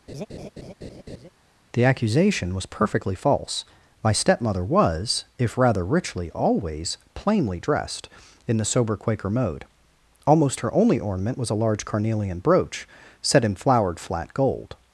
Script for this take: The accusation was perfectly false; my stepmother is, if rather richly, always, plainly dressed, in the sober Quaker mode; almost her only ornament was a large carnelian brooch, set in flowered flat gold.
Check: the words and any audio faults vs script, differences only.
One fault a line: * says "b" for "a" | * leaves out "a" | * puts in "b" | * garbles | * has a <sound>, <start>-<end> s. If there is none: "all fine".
* has a laugh, 0.1-1.3 s
* says "was" for "is"